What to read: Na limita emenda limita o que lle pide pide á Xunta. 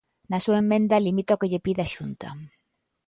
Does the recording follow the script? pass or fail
fail